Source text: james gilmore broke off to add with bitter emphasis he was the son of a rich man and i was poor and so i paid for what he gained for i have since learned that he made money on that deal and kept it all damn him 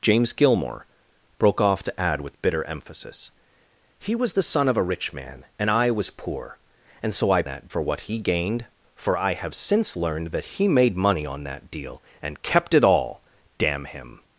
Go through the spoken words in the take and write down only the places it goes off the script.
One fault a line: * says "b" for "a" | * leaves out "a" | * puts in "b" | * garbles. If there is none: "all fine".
* says "that" for "paid"